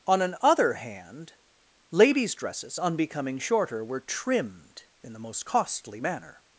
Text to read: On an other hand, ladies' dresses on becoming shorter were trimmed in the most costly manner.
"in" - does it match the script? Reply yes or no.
yes